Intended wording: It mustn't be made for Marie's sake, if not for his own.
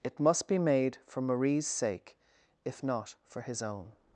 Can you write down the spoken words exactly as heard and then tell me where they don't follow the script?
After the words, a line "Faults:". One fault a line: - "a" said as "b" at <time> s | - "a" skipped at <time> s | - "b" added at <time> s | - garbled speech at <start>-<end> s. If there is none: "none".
It must be made for Marie's sake, if not for his own.
Faults:
- "mustn't" said as "must" at 0.2 s